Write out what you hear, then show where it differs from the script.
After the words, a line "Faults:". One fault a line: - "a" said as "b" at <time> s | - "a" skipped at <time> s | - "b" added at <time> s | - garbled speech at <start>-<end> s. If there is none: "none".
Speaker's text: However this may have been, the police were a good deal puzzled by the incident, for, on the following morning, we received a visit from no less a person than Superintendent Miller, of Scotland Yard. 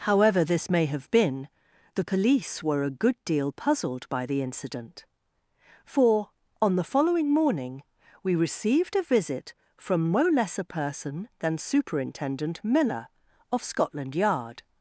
However this may have been, the police were a good deal puzzled by the incident, for, on the following morning, we received a visit from no less a person than Superintendent Miller, of Scotland Yard.
Faults:
none